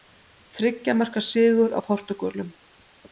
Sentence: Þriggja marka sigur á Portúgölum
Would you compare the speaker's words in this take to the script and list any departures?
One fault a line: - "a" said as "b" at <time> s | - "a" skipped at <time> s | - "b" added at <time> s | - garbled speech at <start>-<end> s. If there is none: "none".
none